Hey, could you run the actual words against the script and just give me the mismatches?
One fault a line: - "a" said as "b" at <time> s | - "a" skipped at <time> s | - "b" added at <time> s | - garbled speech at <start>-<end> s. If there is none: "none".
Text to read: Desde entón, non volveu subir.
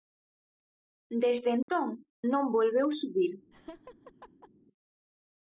none